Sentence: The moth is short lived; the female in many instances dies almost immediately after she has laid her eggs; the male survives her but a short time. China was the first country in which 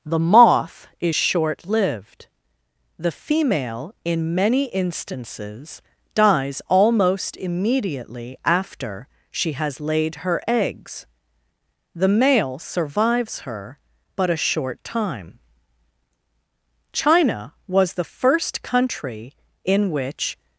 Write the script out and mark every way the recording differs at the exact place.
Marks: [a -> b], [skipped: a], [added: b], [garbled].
The moth is short lived; the female in many instances dies almost immediately after she has laid her eggs; the male survives her but a short time. China was the first country in which